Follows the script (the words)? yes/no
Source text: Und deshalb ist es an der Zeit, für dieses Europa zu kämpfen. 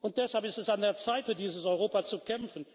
yes